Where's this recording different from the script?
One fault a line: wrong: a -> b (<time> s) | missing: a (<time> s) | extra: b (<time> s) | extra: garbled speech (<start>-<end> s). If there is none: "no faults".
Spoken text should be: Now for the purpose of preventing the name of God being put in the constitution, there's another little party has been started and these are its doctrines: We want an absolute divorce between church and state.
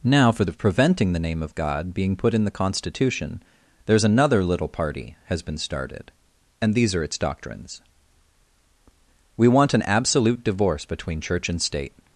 missing: the purpose (0.5 s)